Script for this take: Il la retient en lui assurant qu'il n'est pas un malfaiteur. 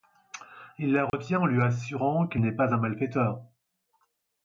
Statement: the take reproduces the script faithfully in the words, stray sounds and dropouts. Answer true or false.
false